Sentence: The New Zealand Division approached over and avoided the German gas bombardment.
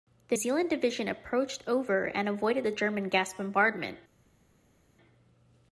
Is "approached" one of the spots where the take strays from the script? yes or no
no